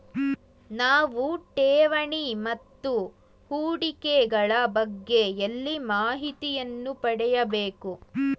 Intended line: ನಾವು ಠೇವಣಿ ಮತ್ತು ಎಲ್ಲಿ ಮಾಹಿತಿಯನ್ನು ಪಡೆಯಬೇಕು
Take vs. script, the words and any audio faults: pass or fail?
fail